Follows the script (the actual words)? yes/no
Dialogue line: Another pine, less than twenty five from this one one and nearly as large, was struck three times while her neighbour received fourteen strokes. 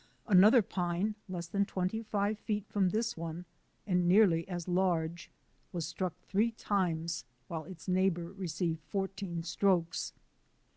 no